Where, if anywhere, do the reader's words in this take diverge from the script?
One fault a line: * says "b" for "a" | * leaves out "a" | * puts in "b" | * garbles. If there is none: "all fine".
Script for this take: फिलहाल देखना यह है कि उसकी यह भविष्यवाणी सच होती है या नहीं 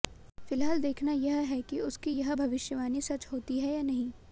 all fine